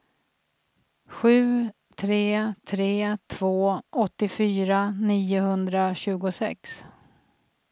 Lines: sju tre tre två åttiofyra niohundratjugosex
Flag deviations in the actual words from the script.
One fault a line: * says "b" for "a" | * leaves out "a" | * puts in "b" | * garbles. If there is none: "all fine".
all fine